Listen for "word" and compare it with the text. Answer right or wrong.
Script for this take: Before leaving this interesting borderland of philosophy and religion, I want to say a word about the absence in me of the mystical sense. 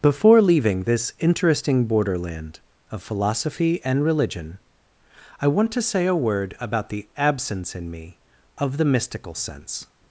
right